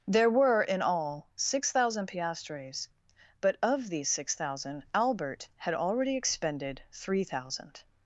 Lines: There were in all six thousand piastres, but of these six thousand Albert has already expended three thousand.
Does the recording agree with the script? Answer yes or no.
no